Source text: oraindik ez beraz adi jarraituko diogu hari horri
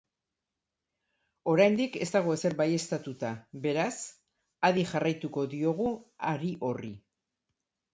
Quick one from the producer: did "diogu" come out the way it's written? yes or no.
yes